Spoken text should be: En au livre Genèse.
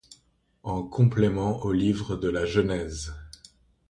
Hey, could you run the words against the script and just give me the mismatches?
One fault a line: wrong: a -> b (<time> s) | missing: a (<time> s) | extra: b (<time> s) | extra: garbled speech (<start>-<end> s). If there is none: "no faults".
extra: complément (0.8 s)
extra: de la (2.1 s)